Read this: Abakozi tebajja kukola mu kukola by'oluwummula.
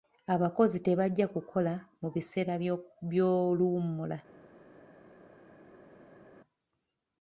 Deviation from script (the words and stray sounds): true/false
true